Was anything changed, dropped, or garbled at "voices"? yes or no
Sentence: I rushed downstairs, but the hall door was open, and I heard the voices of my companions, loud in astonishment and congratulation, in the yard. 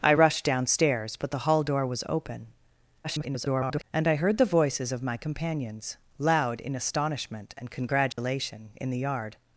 no